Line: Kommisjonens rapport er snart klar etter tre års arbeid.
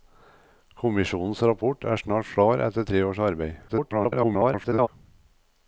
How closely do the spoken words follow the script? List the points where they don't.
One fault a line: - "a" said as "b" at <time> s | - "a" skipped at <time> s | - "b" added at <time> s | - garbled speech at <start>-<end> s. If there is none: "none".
- garbled speech at 3.7-4.9 s